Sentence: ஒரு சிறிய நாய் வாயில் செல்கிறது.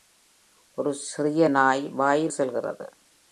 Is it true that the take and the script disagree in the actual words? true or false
false